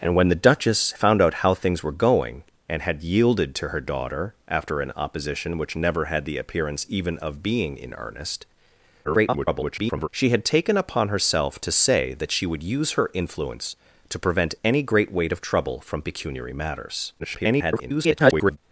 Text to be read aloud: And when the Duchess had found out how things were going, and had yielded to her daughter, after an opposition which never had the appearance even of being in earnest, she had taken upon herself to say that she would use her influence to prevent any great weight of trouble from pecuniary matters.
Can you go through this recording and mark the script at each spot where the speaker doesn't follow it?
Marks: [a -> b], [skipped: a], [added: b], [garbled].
And when the Duchess [skipped: had] found out how things were going, and had yielded to her daughter, after an opposition which never had the appearance even of being in earnest, [garbled] she had taken upon herself to say that she would use her influence to prevent any great weight of trouble from pecuniary matters. [garbled]